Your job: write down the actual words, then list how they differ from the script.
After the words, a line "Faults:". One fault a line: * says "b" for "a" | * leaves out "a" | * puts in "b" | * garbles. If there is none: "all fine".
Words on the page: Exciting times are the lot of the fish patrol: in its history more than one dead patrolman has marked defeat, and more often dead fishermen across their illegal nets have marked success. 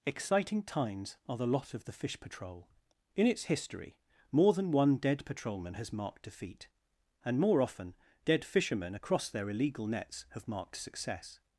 Exciting times are the lot of the fish patrol: in its history more than one dead patrolman has marked defeat, and more often dead fishermen across their illegal nets have marked success.
Faults:
all fine